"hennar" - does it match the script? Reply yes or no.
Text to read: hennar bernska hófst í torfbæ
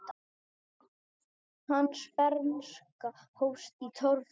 no